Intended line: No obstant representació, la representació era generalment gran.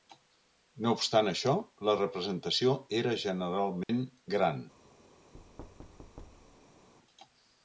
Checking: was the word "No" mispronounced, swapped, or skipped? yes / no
no